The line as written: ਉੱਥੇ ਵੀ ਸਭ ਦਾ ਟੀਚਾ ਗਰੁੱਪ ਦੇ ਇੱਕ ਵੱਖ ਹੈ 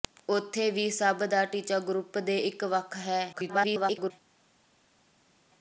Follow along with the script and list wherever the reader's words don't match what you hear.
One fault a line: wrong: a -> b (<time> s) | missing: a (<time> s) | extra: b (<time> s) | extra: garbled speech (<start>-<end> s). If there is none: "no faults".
extra: garbled speech (3.3-4.1 s)